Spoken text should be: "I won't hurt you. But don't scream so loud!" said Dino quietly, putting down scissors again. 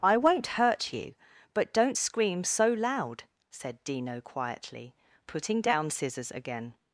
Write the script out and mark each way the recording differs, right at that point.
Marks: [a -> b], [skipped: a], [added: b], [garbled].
"I won't hurt you. But don't scream so loud!" said Dino quietly, putting down scissors again.